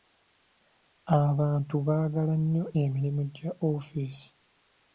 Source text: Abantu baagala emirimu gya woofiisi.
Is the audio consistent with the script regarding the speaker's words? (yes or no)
no